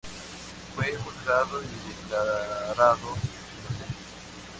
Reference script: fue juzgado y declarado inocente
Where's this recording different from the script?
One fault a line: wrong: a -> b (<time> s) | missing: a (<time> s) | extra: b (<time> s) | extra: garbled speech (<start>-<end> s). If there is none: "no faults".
no faults